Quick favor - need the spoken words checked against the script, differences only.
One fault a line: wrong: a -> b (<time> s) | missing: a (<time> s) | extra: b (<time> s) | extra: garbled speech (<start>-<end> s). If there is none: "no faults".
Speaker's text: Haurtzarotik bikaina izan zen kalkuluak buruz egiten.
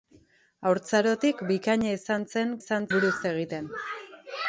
wrong: kalkuluak -> izan (2.6 s)